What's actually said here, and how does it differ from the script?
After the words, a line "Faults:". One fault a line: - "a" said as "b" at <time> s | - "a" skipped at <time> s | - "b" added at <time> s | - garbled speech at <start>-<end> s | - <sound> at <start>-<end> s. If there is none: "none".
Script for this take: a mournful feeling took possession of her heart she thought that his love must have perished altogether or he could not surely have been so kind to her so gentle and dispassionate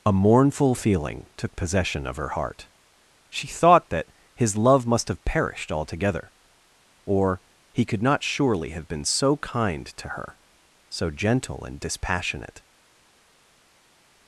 a mournful feeling took possession of her heart she thought that his love must have perished altogether or he could not surely have been so kind to her so gentle and dispassionate
Faults:
none